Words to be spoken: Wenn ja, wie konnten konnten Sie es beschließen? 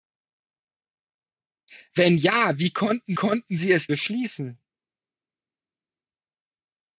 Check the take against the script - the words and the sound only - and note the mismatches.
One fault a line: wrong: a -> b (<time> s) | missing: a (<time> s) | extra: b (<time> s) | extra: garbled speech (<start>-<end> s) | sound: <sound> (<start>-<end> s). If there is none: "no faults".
no faults